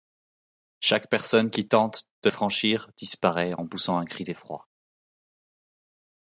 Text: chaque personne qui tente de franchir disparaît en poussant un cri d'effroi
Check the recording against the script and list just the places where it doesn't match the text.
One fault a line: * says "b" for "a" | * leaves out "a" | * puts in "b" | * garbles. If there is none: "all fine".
all fine